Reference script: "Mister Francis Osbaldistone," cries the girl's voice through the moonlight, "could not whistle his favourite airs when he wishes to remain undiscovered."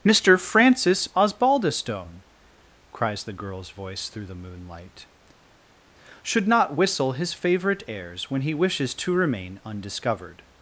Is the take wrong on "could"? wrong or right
wrong